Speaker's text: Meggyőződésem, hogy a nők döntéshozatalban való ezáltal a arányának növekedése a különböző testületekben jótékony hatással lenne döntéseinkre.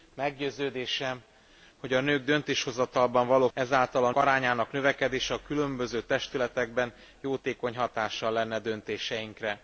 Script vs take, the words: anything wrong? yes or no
no